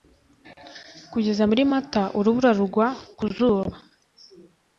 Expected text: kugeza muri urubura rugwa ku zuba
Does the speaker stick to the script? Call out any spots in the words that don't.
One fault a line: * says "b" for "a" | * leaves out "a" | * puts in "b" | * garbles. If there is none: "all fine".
* puts in "mata"